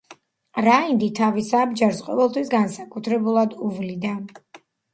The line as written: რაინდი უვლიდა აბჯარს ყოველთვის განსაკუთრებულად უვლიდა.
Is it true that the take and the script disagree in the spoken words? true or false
true